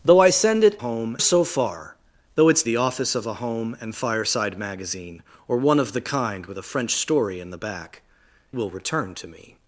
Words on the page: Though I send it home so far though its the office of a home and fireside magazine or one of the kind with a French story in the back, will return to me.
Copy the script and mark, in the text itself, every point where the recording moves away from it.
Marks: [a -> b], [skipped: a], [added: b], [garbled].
Though I send it home so far though its the office of a home and fireside magazine or one of the kind with a French story in the back, will return to me.